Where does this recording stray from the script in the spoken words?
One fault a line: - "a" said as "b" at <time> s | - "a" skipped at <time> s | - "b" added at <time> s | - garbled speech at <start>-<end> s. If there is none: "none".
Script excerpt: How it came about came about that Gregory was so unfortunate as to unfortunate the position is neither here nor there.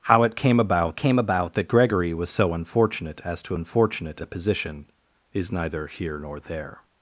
none